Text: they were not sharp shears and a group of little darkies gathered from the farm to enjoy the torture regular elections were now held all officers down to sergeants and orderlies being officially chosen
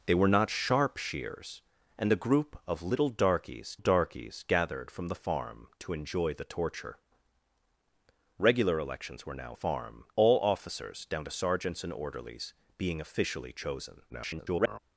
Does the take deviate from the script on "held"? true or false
true